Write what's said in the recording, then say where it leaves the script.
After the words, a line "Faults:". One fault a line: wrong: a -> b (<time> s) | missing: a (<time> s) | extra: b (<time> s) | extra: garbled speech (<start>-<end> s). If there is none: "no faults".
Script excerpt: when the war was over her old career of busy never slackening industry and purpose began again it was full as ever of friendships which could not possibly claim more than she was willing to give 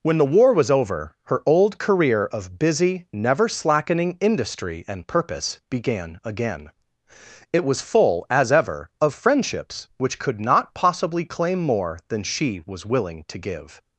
when the war was over her old career of busy never slackening industry and purpose began again it was full as ever of friendships which could not possibly claim more than she was willing to give
Faults:
no faults